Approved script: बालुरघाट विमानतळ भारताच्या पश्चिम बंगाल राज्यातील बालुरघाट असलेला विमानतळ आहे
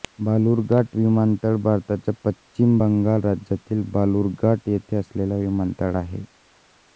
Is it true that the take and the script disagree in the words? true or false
true